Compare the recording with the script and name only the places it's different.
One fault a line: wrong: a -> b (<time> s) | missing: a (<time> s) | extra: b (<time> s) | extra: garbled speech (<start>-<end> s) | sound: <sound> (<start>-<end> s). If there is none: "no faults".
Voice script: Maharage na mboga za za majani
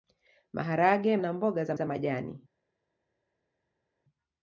no faults